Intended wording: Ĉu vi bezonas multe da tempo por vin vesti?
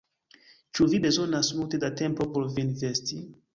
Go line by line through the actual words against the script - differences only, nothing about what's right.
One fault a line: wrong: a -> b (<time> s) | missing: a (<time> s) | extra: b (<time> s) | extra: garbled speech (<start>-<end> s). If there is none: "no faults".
no faults